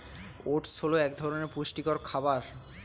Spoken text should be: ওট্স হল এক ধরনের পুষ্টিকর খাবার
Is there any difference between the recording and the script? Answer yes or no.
no